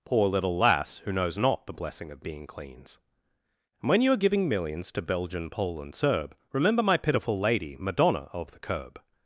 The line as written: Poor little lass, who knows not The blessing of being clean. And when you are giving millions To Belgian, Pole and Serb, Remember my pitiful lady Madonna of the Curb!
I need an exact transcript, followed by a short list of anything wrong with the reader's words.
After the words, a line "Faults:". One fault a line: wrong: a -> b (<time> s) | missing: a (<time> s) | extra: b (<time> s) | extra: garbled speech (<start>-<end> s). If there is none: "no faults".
Poor little lass, who knows not The blessing of being cleans. And when you are giving millions To Belgian, Pole and Serb, Remember my pitiful lady Madonna of the Curb!
Faults:
wrong: clean -> cleans (2.5 s)